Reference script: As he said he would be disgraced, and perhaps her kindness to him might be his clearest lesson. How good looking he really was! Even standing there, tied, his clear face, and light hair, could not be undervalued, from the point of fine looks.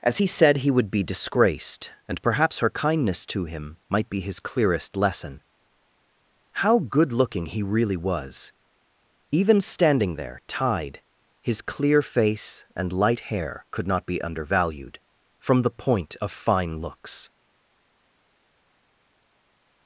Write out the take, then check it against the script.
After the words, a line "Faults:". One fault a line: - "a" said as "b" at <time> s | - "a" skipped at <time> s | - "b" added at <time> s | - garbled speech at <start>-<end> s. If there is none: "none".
As he said he would be disgraced, and perhaps her kindness to him might be his clearest lesson. How good looking he really was! Even standing there, tied, his clear face, and light hair, could not be undervalued, from the point of fine looks.
Faults:
none